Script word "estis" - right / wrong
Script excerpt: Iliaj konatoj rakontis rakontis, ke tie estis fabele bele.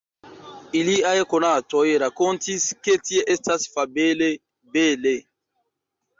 wrong